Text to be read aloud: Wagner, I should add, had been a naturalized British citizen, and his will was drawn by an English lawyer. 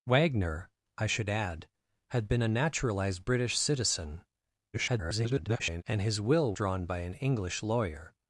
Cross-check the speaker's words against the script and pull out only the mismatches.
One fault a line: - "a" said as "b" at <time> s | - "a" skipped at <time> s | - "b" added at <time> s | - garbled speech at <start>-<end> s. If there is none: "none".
- garbled speech at 4.7-5.8 s
- "was" skipped at 6.5 s